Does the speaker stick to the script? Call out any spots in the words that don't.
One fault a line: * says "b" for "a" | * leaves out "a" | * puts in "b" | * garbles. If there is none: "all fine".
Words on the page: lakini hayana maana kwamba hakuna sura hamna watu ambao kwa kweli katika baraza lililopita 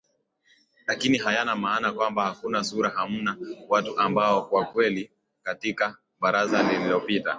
all fine